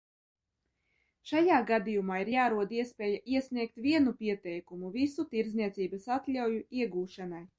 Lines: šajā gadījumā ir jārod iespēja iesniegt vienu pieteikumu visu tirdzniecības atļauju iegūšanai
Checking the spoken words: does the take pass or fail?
pass